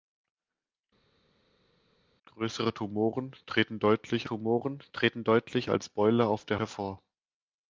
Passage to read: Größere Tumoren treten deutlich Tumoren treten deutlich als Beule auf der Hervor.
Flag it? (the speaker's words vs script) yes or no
no